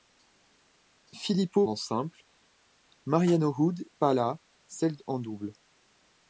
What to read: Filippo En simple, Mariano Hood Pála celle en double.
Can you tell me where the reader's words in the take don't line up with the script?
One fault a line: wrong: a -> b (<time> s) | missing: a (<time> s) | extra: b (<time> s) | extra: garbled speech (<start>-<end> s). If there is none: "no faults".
no faults